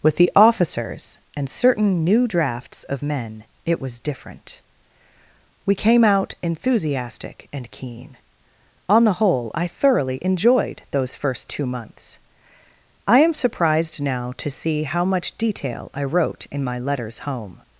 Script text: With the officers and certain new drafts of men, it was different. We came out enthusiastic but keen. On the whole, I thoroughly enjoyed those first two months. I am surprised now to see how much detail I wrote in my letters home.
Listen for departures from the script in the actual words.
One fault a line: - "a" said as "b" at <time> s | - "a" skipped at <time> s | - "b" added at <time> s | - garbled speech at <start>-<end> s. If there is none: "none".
- "but" said as "and" at 7.5 s